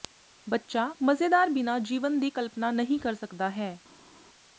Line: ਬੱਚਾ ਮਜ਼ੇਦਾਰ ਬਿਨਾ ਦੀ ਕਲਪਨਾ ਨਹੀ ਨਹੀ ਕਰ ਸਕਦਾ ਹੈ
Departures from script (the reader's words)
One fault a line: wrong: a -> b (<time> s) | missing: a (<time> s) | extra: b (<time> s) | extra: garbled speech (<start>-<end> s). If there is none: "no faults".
extra: ਜੀਵਨ (1.8 s)
missing: ਨਹੀ (3.0 s)